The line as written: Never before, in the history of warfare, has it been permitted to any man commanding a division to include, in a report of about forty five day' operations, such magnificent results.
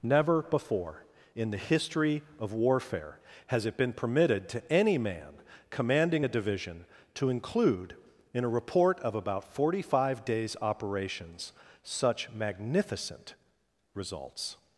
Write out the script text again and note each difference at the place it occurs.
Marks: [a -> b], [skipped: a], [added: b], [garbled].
Never before, in the history of warfare, has it been permitted to any man commanding a division to include, in a report of about forty five [day' -> days] operations, such magnificent results.